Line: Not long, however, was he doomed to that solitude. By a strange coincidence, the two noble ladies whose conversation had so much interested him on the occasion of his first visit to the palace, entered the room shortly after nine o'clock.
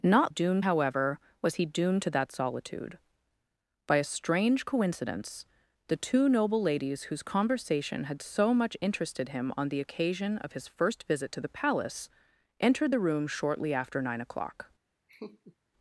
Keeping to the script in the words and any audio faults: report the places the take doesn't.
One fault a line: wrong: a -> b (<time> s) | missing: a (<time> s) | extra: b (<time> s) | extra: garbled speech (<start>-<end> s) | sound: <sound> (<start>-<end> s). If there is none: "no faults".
wrong: long -> doomed (0.3 s)
sound: laugh (15.1-15.6 s)